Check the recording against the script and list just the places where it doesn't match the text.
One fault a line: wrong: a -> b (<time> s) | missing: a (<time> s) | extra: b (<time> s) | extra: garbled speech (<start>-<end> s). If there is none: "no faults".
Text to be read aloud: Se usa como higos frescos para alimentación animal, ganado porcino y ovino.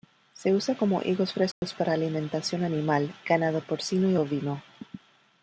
no faults